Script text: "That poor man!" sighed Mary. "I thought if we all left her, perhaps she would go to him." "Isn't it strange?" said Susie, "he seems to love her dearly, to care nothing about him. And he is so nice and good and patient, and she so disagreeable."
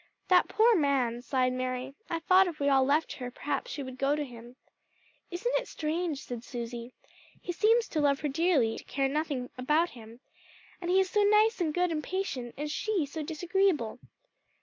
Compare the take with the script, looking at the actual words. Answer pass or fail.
pass